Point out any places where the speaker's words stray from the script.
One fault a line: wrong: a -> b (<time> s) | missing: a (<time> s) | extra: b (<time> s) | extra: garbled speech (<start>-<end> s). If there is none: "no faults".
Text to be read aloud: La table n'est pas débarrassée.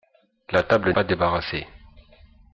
missing: n'est (0.9 s)